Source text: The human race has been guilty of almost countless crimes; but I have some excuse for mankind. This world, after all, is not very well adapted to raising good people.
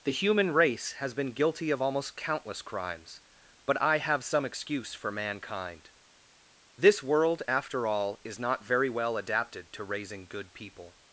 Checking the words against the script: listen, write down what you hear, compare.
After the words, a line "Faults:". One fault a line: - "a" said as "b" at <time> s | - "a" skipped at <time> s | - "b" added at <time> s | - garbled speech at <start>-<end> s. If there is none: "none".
The human race has been guilty of almost countless crimes; but I have some excuse for mankind. This world, after all, is not very well adapted to raising good people.
Faults:
none